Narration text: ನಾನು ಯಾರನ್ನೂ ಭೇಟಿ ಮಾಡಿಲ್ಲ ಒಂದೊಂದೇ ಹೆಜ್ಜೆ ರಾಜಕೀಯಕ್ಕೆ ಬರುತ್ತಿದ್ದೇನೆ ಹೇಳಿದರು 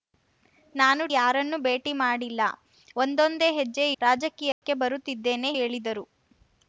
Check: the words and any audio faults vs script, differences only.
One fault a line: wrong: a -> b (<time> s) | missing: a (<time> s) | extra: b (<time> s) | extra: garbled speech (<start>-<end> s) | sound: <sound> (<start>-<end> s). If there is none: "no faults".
sound: dropout (4.5-4.6 s)